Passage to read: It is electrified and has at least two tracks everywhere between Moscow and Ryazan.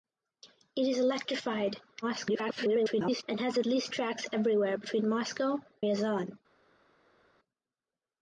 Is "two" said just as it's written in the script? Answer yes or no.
no